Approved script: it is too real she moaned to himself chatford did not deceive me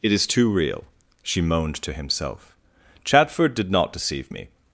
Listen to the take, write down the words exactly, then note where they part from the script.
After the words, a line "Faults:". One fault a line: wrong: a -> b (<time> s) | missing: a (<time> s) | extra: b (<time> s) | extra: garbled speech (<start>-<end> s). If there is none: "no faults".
it is too real she moaned to himself chatford did not deceive me
Faults:
no faults